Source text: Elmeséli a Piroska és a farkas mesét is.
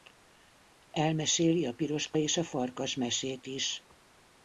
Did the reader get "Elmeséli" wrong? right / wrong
right